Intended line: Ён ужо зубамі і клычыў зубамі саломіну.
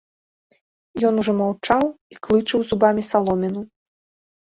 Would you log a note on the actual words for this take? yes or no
yes